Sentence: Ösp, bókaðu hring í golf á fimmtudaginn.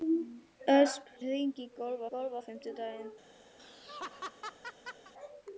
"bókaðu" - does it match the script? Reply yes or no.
no